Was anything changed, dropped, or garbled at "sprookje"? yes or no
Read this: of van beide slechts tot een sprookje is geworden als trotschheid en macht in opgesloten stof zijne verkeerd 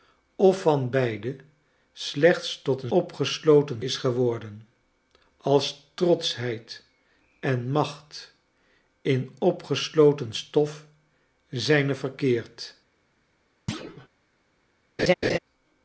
yes